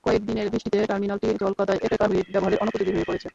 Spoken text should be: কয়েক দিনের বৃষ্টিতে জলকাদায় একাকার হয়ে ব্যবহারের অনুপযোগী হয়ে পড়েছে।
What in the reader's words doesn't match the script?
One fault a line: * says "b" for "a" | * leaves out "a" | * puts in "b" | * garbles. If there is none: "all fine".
* puts in "টার্মিনালটি"